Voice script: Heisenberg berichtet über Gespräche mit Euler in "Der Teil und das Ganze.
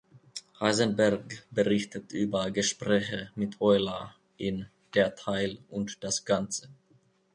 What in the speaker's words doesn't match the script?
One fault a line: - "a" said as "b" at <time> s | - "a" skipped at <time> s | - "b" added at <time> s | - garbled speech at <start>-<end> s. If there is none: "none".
none